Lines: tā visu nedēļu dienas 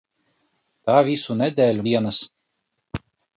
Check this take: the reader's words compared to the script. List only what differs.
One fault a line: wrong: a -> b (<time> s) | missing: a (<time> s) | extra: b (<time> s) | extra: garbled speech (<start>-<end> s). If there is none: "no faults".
no faults